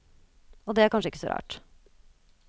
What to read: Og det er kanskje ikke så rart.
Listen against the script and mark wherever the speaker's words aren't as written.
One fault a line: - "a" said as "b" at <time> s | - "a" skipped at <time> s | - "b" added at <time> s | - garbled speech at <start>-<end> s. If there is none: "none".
none